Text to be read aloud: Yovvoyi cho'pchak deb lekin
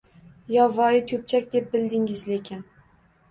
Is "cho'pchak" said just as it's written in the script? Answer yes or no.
yes